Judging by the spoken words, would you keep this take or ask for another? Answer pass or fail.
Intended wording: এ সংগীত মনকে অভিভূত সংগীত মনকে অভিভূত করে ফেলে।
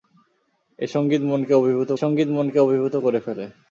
pass